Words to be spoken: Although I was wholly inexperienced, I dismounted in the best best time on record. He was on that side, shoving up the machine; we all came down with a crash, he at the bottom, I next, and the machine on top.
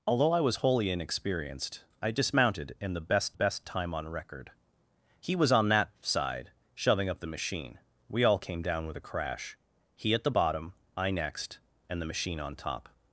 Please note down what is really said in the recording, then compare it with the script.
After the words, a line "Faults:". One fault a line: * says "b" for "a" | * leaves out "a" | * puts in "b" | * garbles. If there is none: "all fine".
Although I was wholly inexperienced, I dismounted in the best best time on record. He was on that side, shoving up the machine; we all came down with a crash, he at the bottom, I next, and the machine on top.
Faults:
all fine